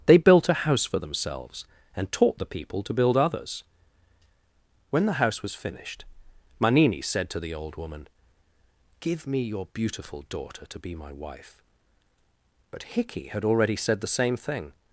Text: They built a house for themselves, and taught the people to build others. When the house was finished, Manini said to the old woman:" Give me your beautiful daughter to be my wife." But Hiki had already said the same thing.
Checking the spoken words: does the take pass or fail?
pass